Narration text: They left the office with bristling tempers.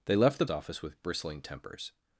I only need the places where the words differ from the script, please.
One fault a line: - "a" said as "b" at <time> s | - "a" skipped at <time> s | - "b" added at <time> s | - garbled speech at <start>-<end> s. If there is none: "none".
none